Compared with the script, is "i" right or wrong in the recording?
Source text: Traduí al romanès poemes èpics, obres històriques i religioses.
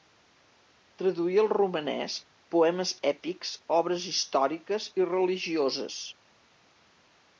right